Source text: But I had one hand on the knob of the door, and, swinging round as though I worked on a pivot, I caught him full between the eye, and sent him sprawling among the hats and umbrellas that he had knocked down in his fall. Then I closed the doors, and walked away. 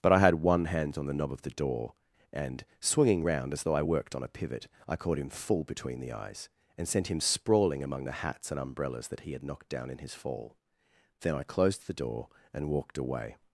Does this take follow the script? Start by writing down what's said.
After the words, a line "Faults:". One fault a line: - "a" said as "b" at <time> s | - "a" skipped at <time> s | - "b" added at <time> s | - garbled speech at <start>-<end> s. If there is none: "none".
But I had one hand on the knob of the door, and, swinging round as though I worked on a pivot, I caught him full between the eyes, and sent him sprawling among the hats and umbrellas that he had knocked down in his fall. Then I closed the door, and walked away.
Faults:
- "eye" said as "eyes" at 6.1 s
- "doors" said as "door" at 11.9 s